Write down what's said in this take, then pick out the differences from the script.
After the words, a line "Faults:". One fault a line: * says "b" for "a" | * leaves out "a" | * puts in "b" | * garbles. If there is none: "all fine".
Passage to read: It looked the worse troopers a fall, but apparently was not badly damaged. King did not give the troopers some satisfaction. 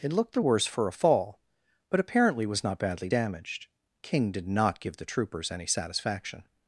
It looked the worse for a fall, but apparently was not badly damaged. King did not give the troopers any satisfaction.
Faults:
* says "for" for "troopers"
* says "any" for "some"